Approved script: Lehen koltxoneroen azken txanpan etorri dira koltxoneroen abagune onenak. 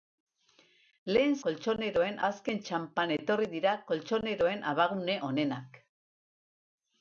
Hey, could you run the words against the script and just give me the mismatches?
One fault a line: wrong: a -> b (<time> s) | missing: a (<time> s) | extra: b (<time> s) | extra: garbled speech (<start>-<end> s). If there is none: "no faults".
no faults